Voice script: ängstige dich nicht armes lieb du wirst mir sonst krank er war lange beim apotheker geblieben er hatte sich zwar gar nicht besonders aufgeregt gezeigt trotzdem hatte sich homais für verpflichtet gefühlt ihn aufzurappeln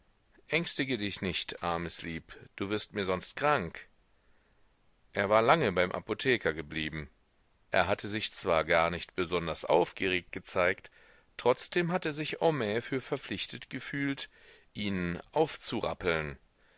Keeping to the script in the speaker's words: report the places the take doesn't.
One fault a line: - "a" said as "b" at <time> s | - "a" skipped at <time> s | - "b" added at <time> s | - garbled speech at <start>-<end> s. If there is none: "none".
none